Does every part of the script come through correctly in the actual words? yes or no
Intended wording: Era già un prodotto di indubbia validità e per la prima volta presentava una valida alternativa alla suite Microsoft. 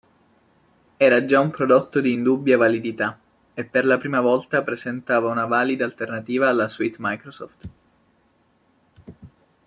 yes